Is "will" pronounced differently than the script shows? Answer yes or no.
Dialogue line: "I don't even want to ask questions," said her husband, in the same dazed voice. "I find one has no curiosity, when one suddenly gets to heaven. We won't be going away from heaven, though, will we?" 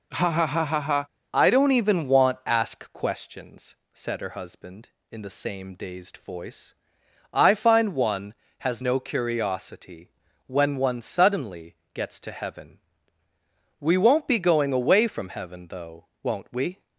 yes